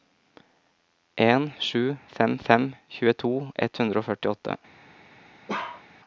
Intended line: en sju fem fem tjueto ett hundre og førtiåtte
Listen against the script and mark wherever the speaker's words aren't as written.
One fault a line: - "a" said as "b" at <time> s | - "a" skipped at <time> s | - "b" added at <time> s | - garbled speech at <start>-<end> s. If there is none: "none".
none